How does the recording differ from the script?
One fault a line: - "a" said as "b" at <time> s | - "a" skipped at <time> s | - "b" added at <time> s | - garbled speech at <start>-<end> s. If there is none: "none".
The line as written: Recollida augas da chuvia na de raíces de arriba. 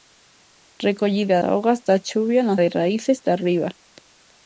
none